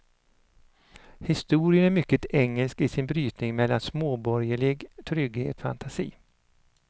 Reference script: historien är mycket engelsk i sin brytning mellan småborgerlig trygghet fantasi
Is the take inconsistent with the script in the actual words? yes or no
no